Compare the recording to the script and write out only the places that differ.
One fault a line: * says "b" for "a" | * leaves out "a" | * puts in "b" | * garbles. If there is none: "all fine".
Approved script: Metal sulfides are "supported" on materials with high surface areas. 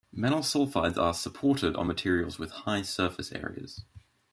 all fine